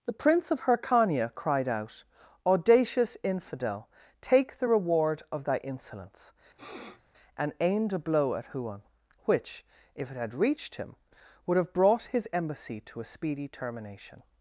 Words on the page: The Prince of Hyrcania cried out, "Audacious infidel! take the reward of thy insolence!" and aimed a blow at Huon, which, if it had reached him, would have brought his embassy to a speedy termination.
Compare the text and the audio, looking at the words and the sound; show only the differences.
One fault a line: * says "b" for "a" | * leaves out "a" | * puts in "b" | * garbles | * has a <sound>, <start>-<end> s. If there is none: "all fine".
* has a sniff, 6.6-7.0 s